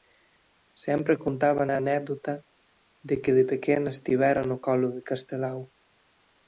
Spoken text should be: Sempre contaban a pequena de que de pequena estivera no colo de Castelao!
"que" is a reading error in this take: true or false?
false